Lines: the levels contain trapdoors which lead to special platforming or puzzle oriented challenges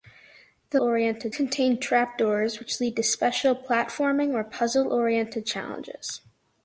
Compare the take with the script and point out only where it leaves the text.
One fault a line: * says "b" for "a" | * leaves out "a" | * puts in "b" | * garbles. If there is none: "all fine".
* says "oriented" for "levels"